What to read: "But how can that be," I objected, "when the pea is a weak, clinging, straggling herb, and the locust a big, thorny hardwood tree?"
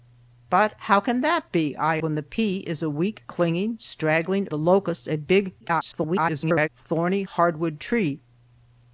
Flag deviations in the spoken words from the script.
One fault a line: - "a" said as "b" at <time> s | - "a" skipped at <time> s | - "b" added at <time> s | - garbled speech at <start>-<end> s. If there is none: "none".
- "objected" skipped at 2.0 s
- "herb and" skipped at 4.5 s
- garbled speech at 5.6-6.7 s